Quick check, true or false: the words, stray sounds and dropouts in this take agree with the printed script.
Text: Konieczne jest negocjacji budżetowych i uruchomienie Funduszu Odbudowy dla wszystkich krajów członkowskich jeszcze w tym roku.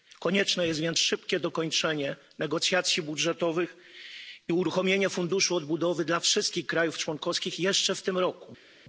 false